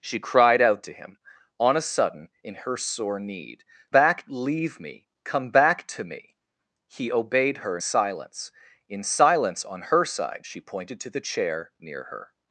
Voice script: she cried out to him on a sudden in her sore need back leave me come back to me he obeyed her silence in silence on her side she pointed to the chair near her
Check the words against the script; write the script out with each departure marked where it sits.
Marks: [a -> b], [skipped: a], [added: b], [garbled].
she cried out to him on a sudden in her sore need back leave me come back to me he obeyed her silence in silence on her side she pointed to the chair near her